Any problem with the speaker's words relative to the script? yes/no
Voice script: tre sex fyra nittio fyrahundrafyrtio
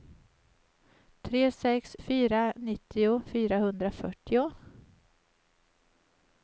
no